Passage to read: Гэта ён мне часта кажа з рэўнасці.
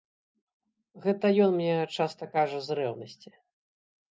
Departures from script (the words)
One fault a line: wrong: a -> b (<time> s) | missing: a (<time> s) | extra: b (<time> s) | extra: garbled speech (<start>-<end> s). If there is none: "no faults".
no faults